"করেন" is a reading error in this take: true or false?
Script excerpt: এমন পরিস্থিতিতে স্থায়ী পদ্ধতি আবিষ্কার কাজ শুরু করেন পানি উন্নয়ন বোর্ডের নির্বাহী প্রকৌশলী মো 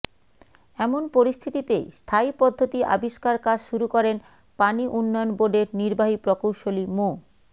false